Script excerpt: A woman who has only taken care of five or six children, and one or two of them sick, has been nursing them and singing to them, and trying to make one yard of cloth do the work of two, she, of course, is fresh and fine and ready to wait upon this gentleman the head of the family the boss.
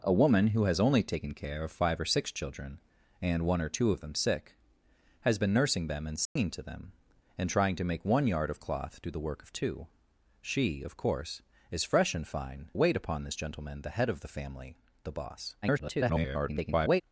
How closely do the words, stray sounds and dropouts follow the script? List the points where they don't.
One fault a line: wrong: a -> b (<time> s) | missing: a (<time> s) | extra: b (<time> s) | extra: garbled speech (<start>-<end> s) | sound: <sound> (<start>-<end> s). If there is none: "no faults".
sound: dropout (6.3-6.4 s)
missing: and ready to (12.7 s)
extra: garbled speech (15.6-17.0 s)